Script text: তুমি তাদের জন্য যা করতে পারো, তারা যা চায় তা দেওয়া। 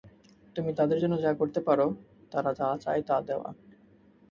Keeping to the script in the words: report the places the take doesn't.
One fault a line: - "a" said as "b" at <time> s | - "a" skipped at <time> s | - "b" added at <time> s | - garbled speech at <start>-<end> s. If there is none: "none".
none